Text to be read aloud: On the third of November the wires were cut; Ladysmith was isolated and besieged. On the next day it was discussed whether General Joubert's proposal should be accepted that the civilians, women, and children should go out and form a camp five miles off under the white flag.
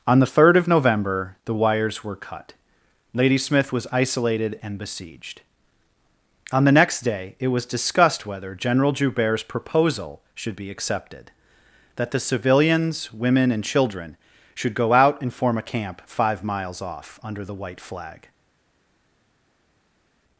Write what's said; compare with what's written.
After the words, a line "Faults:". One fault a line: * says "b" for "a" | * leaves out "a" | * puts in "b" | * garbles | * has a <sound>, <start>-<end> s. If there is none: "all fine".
On the third of November the wires were cut; Ladysmith was isolated and besieged. On the next day it was discussed whether General Joubert's proposal should be accepted that the civilians, women, and children should go out and form a camp five miles off under the white flag.
Faults:
all fine